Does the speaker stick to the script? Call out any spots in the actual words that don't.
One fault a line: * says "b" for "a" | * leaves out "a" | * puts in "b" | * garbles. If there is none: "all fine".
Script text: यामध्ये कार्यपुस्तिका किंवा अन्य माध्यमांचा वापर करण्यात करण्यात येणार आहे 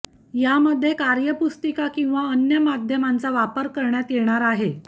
* leaves out "करण्यात"